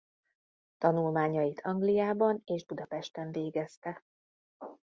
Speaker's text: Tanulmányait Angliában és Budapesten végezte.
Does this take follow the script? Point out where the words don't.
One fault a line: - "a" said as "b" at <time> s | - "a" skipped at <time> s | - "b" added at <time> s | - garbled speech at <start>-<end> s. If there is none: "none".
none